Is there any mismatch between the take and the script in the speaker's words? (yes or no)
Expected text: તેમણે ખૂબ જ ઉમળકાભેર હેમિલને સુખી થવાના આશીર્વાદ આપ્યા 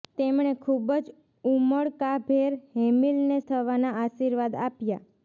yes